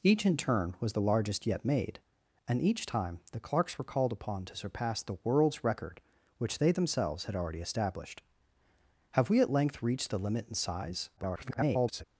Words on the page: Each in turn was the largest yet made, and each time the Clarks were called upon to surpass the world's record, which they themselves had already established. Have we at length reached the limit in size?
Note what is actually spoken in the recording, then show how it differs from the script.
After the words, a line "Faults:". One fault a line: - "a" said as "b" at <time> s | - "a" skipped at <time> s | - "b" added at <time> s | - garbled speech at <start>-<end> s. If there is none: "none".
Each in turn was the largest yet made, and each time the Clarks were called upon to surpass the world's record, which they themselves had already established. Have we at length reached the limit in size? [garbled]
Faults:
- garbled speech at 11.2-12.0 s